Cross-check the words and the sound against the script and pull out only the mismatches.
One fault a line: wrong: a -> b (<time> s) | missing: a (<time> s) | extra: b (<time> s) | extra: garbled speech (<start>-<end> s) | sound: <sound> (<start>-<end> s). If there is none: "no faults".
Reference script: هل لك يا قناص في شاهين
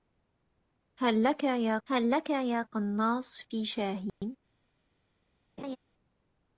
extra: هل لك يا (1.9 s)
sound: dropout (4.1-4.2 s)
sound: laugh (5.6-5.8 s)